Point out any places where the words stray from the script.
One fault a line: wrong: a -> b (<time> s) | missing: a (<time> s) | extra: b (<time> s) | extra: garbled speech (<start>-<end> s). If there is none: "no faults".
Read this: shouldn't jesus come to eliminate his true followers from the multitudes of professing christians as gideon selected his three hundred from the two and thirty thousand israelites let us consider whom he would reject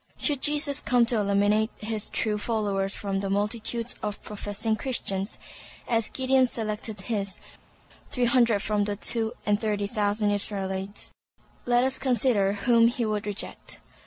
wrong: shouldn't -> should (0.2 s)